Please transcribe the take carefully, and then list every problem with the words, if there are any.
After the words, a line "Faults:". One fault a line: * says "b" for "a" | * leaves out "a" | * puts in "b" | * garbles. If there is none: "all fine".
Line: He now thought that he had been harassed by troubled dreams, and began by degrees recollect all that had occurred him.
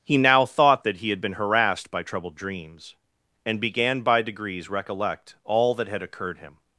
He now thought that he had been harassed by troubled dreams, and began by degrees recollect all that had occurred him.
Faults:
all fine